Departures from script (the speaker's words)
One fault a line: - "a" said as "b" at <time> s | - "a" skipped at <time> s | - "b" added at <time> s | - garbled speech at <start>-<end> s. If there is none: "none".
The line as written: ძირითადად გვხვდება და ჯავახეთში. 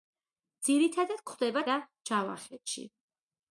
none